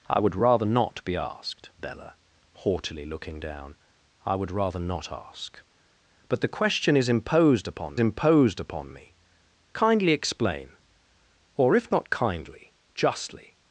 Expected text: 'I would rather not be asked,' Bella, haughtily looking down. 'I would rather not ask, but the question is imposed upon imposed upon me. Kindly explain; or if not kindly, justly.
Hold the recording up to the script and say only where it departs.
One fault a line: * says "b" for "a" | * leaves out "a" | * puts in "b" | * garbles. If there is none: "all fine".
all fine